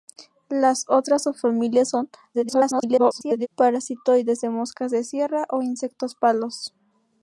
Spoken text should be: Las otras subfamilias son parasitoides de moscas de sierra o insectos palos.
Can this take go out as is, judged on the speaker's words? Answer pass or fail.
fail